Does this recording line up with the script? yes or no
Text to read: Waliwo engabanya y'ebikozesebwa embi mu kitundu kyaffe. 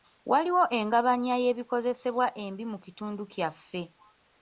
yes